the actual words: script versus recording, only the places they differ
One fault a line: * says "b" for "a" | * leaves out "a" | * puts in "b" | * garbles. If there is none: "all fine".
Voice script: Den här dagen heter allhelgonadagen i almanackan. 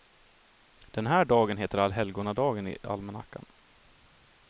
all fine